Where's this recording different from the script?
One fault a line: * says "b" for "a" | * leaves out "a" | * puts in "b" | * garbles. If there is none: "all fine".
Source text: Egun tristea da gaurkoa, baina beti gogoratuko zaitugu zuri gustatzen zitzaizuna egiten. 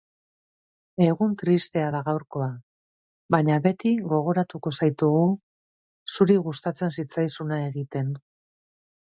all fine